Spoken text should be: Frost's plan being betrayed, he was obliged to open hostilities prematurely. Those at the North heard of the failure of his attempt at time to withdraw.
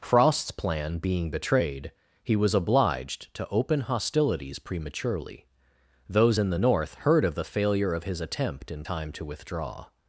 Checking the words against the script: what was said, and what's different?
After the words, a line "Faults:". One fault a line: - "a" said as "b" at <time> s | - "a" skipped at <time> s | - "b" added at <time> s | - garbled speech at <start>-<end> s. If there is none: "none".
Frost's plan being betrayed, he was obliged to open hostilities prematurely. Those in the North heard of the failure of his attempt in time to withdraw.
Faults:
- "at" said as "in" at 6.4 s
- "at" said as "in" at 8.7 s